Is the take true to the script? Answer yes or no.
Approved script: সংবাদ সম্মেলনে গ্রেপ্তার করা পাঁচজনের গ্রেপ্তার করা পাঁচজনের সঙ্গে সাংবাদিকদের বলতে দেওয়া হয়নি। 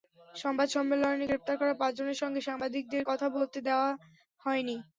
no